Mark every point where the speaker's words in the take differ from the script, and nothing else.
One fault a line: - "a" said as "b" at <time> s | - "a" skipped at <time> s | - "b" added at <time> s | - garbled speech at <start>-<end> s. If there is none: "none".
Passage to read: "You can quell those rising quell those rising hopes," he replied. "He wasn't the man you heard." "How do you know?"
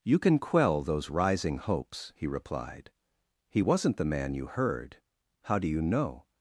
- "quell those rising" skipped at 1.6 s